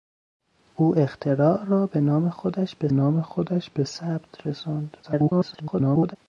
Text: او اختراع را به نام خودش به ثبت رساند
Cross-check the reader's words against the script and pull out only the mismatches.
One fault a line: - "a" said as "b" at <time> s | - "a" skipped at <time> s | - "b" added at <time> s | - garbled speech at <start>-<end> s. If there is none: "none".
- "نام خودش به" added at 2.9 s
- garbled speech at 5.0-6.2 s